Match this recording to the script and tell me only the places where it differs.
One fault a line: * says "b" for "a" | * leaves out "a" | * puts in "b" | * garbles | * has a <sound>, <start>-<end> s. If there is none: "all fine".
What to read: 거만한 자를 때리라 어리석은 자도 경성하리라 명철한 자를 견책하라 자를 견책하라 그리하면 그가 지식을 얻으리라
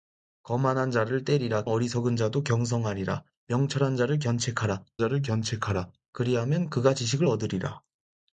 all fine